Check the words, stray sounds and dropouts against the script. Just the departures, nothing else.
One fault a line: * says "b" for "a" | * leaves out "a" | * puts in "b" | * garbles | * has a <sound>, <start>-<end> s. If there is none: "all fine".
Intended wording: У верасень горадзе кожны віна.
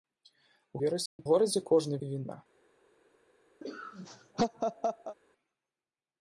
* has a dropout, 1.1-1.2 s
* has a laugh, 3.6-5.2 s